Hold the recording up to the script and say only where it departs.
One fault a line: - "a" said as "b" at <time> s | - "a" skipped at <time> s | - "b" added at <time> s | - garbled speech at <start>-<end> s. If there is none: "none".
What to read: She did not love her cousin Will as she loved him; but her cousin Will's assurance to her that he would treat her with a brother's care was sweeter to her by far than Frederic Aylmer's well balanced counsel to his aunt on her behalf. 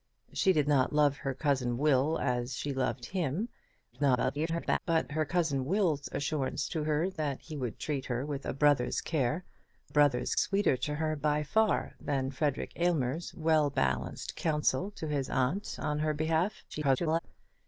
- garbled speech at 3.9-4.8 s
- "was" said as "brother's" at 9.9 s
- garbled speech at 16.7-17.2 s